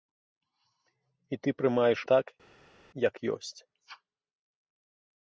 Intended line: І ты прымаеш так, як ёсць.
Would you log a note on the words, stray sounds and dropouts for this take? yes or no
no